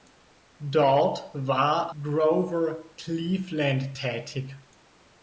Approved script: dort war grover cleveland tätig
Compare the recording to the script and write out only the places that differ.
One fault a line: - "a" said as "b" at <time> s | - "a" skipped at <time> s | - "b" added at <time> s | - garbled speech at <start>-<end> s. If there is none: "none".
none